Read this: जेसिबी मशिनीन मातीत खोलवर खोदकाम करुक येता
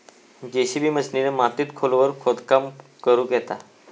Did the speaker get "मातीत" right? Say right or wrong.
right